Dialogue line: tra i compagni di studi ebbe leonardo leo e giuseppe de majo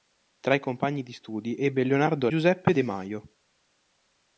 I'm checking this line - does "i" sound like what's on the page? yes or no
yes